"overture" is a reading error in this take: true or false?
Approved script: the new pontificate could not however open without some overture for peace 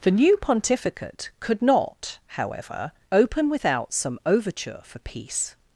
false